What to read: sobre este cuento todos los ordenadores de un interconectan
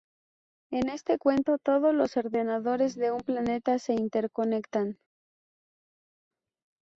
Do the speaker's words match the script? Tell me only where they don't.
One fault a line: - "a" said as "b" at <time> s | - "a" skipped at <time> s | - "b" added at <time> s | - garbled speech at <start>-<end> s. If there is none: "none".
- "sobre" said as "en" at 0.7 s
- "planeta se" added at 3.2 s